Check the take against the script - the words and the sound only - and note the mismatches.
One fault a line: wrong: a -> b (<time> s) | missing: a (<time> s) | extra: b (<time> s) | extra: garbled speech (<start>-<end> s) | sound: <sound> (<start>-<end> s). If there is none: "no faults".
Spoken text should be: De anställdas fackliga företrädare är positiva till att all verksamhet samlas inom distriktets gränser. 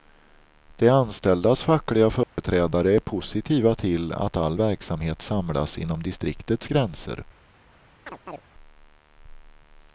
sound: dropout (2.2-2.4 s)
sound: chirp (8.1-8.4 s)